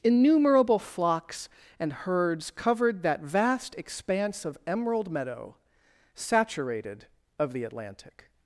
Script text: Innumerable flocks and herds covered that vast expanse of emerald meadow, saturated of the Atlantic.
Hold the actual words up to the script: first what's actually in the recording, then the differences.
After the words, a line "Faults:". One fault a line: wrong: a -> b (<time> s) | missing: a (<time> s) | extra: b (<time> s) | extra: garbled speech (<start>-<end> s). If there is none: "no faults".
Innumerable flocks and herds covered that vast expanse of emerald meadow, saturated of the Atlantic.
Faults:
no faults